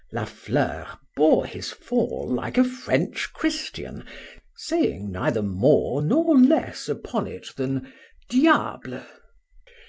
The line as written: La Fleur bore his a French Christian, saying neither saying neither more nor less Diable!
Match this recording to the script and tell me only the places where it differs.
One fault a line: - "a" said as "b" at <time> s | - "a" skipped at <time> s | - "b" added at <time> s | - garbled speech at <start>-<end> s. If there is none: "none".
- "fall like" added at 1.7 s
- "saying neither" skipped at 5.4 s
- "upon it than" added at 6.9 s